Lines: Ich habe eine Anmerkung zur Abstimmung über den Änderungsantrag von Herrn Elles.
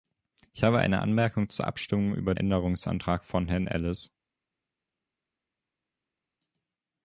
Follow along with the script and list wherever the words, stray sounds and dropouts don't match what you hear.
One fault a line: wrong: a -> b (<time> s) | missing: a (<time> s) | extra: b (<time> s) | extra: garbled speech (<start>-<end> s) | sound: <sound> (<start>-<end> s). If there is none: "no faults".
missing: den (2.3 s)